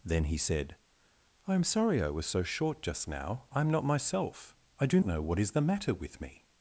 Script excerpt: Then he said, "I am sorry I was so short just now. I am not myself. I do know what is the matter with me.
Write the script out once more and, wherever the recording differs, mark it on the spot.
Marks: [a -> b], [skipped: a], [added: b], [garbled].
Then he said, "I am sorry I was so short just now. I am not myself. I do know what is the matter with me.